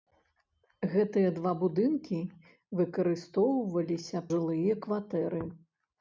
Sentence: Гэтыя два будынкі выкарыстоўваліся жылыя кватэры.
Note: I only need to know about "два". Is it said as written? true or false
true